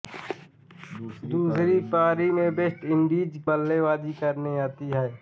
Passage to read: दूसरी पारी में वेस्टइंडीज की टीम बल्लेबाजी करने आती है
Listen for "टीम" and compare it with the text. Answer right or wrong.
wrong